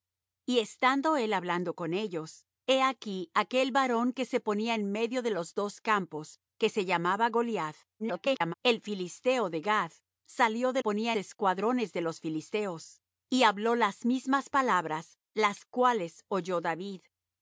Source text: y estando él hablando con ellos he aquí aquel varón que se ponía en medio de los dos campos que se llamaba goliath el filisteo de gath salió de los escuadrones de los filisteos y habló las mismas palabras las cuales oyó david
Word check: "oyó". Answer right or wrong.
right